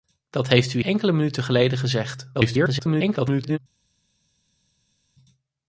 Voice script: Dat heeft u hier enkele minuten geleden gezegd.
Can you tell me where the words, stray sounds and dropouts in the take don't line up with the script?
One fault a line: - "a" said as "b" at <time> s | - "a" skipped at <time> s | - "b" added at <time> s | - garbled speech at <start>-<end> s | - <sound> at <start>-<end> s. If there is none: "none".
- "hier" skipped at 0.8 s
- garbled speech at 2.3-3.6 s